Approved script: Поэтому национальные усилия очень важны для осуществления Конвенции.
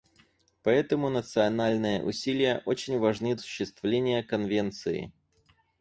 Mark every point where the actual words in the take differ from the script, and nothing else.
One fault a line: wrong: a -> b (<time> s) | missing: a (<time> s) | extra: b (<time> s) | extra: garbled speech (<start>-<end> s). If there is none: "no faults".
missing: для (3.4 s)